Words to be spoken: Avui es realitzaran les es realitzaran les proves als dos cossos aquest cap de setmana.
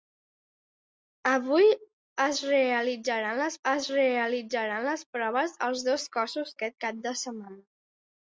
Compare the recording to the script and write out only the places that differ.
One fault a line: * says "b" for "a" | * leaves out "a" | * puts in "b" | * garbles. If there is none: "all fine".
all fine